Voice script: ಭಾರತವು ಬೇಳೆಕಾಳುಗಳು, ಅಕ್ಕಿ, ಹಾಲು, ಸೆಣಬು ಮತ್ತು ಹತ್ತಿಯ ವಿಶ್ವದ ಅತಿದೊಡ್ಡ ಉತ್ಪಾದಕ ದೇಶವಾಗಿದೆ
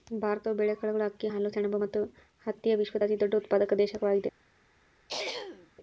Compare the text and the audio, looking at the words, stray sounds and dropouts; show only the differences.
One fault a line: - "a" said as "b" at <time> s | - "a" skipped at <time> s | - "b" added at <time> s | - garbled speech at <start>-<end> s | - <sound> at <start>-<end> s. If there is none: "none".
- throat clearing at 5.1-5.7 s